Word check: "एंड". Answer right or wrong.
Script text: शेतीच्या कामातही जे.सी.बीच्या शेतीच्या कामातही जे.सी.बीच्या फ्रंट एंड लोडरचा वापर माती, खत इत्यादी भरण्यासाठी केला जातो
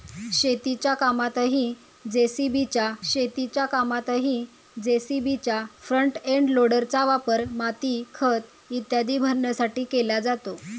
right